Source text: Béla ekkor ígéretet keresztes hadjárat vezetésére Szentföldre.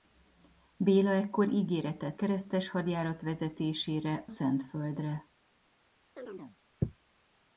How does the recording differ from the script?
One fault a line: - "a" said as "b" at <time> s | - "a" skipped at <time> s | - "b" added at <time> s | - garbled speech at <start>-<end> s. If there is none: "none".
none